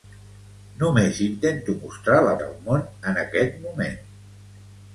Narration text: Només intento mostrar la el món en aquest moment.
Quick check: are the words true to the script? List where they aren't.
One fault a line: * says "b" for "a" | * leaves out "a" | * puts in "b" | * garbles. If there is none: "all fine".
all fine